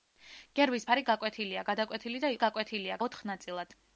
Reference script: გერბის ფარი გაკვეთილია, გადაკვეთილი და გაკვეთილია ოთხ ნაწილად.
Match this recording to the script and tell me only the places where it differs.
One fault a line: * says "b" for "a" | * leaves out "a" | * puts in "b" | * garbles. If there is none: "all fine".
all fine